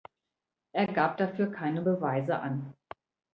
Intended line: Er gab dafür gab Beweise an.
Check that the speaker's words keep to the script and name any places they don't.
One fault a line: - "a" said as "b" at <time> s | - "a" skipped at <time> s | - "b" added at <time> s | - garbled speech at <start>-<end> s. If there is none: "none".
- "gab" said as "keine" at 1.5 s